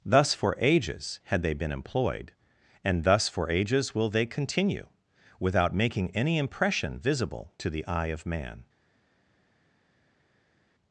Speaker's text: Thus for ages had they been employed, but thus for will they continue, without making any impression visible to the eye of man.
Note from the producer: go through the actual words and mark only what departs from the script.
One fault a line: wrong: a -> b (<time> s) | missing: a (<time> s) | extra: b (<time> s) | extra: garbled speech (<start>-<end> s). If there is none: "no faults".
wrong: but -> and (2.8 s)
extra: ages (3.5 s)